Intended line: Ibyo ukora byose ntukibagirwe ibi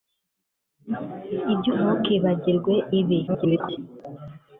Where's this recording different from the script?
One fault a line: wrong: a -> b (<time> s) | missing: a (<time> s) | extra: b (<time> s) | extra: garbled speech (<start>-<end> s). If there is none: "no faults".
missing: ukora byose (1.7 s)
extra: garbled speech (3.3-3.8 s)